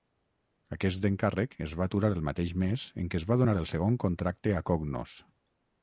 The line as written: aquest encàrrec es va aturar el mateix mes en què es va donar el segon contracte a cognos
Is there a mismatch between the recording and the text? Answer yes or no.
no